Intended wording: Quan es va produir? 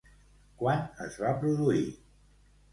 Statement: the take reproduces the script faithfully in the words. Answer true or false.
true